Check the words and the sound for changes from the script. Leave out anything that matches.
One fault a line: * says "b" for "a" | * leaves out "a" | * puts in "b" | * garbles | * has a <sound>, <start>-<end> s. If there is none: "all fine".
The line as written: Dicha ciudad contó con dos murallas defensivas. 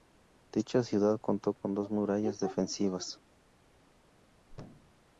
* has a thud, 4.5-5.0 s